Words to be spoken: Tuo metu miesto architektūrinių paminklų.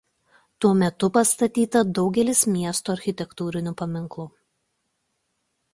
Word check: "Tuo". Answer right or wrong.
right